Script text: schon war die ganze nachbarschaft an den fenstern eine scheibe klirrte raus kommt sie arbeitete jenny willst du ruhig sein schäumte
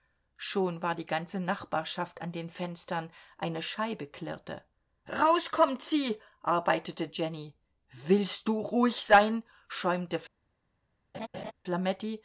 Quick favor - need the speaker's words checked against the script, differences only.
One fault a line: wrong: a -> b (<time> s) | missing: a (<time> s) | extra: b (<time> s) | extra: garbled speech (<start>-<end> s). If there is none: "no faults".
no faults